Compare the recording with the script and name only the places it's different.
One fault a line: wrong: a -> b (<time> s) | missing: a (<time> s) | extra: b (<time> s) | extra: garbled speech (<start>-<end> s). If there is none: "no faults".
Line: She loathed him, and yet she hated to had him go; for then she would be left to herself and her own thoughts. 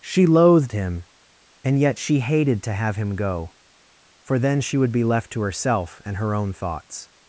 wrong: had -> have (2.7 s)